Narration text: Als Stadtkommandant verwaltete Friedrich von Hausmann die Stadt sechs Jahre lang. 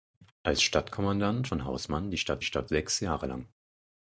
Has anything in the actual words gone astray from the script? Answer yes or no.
yes